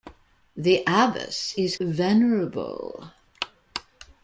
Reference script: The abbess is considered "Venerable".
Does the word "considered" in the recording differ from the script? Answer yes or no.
yes